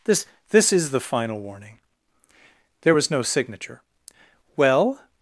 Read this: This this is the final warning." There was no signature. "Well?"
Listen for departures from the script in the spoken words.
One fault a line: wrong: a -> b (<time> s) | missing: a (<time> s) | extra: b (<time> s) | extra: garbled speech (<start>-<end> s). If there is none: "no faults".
no faults